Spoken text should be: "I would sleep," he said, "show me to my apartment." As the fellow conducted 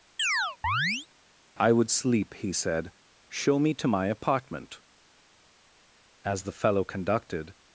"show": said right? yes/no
yes